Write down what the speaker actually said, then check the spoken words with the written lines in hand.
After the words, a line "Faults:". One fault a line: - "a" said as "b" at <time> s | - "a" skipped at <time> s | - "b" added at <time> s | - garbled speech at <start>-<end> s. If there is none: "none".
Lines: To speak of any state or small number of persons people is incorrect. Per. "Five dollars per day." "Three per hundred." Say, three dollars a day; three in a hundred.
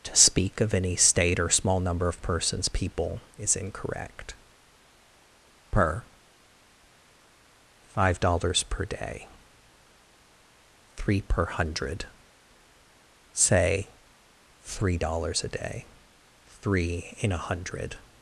To speak of any state or small number of persons people is incorrect. Per. "Five dollars per day." "Three per hundred." Say, three dollars a day; three in a hundred.
Faults:
none